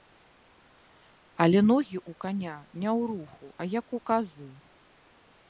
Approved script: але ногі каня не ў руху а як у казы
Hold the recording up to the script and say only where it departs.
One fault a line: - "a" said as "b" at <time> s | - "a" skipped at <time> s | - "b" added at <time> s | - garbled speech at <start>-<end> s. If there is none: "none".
- "ў" added at 2.0 s